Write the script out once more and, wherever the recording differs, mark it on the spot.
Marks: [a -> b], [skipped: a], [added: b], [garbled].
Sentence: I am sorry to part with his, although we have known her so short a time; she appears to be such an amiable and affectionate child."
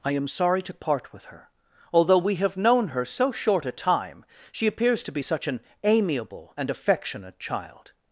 I am sorry to part with [his, -> her] although we have known her so short a time; she appears to be such an amiable and affectionate child."